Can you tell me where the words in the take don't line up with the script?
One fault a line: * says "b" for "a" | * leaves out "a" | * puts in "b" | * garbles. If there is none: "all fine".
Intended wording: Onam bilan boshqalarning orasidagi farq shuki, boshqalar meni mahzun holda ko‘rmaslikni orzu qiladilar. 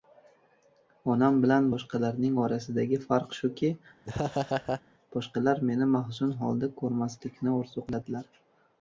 all fine